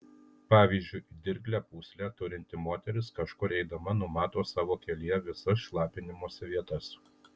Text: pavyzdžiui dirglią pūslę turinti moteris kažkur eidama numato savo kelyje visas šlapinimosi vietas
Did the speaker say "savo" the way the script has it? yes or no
yes